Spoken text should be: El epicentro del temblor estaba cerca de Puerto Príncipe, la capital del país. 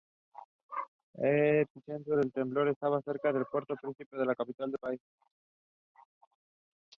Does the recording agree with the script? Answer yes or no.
yes